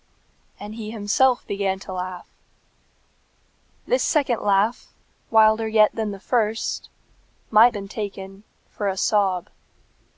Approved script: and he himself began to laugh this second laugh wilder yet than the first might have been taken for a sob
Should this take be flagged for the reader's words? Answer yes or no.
yes